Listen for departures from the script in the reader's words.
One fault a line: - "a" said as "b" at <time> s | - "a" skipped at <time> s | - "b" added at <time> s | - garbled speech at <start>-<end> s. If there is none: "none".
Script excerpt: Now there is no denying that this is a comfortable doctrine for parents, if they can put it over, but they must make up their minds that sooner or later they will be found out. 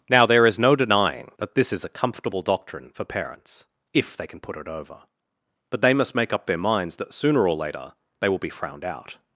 - "found" said as "frowned" at 8.5 s